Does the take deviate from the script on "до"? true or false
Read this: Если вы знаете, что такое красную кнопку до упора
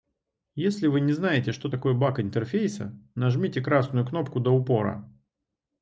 false